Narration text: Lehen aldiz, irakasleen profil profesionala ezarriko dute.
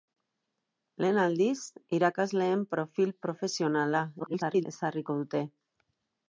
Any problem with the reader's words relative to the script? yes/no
yes